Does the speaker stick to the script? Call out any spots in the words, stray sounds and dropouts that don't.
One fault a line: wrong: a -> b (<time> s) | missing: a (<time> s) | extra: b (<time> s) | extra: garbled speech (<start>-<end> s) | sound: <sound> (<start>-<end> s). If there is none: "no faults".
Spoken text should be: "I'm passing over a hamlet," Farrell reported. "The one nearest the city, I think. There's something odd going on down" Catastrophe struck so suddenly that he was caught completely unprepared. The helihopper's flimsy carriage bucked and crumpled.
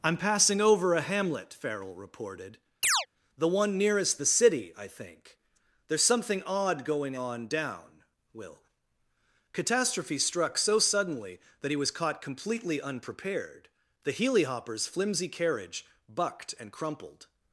sound: chirp (2.8-3.1 s)
extra: will (8.3 s)